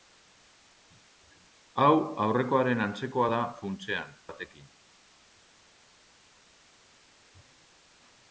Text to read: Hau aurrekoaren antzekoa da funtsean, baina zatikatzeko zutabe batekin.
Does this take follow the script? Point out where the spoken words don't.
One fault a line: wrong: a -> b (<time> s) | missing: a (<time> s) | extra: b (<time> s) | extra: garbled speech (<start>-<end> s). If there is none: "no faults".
missing: baina zatikatzeko zutabe (4.1 s)